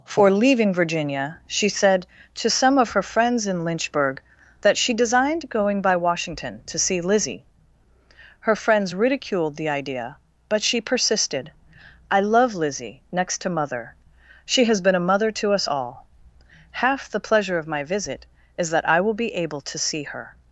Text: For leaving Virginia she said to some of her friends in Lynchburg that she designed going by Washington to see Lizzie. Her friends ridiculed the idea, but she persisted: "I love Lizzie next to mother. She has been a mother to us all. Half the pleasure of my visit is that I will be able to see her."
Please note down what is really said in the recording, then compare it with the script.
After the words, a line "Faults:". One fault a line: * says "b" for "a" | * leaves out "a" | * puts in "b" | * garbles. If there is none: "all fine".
For leaving Virginia she said to some of her friends in Lynchburg that she designed going by Washington to see Lizzie. Her friends ridiculed the idea, but she persisted: "I love Lizzie next to mother. She has been a mother to us all. Half the pleasure of my visit is that I will be able to see her."
Faults:
all fine